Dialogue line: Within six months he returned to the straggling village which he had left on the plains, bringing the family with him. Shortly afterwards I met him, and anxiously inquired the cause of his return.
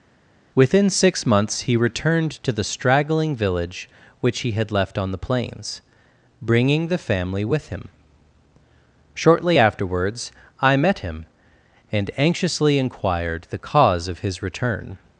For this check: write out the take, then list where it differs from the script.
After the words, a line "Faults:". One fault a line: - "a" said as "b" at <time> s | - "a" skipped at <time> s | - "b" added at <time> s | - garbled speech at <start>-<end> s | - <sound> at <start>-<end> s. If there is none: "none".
Within six months he returned to the straggling village which he had left on the plains, bringing the family with him. Shortly afterwards I met him, and anxiously inquired the cause of his return.
Faults:
none